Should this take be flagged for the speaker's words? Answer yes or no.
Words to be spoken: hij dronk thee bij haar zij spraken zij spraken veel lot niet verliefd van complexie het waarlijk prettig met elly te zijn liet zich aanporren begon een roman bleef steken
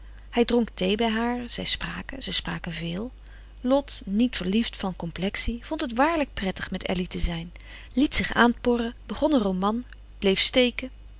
yes